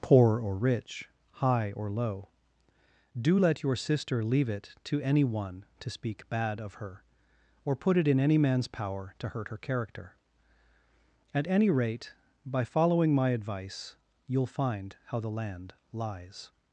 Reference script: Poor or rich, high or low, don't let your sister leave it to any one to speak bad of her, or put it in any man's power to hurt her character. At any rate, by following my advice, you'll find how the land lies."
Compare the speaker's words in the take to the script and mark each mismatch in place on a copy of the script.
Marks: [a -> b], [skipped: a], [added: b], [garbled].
Poor or rich, high or low, [don't -> do] let your sister leave it to any one to speak bad of her, or put it in any man's power to hurt her character. At any rate, by following my advice, you'll find how the land lies."